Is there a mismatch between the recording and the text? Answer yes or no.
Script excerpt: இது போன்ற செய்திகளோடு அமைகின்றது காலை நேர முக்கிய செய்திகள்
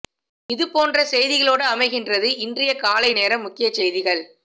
yes